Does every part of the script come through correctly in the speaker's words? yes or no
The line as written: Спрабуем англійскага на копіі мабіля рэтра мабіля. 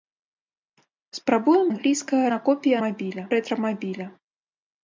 yes